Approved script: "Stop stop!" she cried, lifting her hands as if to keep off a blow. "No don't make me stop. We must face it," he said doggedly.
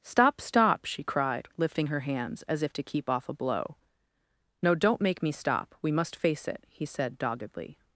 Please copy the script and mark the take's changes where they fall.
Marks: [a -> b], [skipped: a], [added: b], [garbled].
"Stop stop!" she cried, lifting her hands as if to keep off a blow. "No don't make me stop. We must face it," he said doggedly.